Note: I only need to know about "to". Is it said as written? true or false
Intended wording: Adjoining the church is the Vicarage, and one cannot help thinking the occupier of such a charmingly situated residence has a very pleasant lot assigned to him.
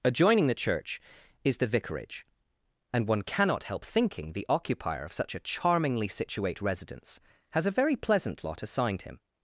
false